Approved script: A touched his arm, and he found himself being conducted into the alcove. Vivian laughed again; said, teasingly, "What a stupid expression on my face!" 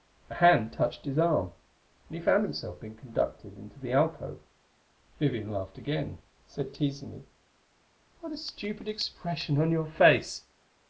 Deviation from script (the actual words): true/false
true